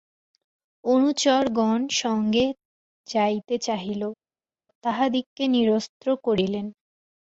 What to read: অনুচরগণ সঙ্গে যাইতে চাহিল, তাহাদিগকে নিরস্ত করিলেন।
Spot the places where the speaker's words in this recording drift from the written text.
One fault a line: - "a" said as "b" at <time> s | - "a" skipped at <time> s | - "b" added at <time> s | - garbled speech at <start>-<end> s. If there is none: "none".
none